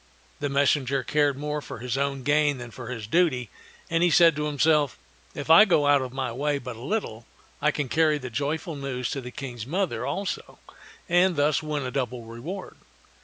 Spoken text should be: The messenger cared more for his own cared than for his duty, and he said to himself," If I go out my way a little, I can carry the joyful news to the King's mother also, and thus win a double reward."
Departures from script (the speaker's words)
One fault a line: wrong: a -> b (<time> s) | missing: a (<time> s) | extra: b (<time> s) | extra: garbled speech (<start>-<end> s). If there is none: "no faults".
wrong: cared -> gain (2.2 s)
extra: of (6.0 s)
extra: but (6.6 s)